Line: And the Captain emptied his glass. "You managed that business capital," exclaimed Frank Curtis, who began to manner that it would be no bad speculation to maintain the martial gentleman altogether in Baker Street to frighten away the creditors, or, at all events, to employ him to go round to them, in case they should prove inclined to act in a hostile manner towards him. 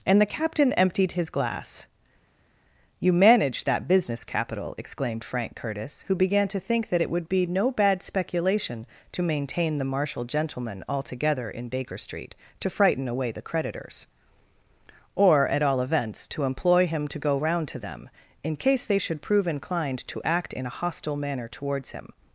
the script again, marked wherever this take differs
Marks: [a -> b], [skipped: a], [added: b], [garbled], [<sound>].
And the Captain emptied his glass. "You managed that business capital," exclaimed Frank Curtis, who began to [manner -> think] that it would be no bad speculation to maintain the martial gentleman altogether in Baker Street to frighten away the creditors, or, at all events, to employ him to go round to them, in case they should prove inclined to act in a hostile manner towards him.